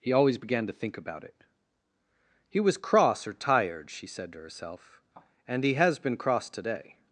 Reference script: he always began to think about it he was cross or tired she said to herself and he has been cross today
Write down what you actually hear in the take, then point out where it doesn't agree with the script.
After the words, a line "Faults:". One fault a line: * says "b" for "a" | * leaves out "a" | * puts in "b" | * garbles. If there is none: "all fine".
he always began to think about it he was cross or tired she said to herself and he has been cross today
Faults:
all fine